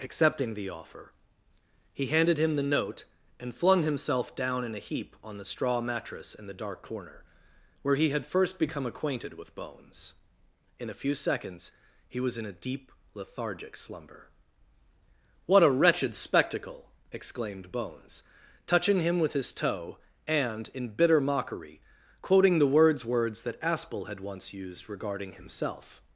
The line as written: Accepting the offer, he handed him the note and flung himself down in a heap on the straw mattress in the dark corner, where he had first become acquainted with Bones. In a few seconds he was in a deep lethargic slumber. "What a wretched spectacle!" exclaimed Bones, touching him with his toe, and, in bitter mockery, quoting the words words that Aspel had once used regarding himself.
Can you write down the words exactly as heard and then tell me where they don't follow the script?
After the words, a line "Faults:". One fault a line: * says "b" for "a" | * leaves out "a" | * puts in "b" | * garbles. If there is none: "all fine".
Accepting the offer, he handed him the note and flung himself down in a heap on the straw mattress in the dark corner, where he had first become acquainted with Bones. In a few seconds he was in a deep lethargic slumber. "What a wretched spectacle!" exclaimed Bones, touching him with his toe, and, in bitter mockery, quoting the words words that Aspel had once used regarding himself.
Faults:
all fine